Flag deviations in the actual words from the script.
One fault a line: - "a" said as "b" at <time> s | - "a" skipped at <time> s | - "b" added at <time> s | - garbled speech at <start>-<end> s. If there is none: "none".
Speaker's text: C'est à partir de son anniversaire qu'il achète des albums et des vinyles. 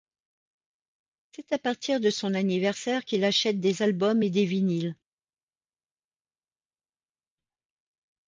none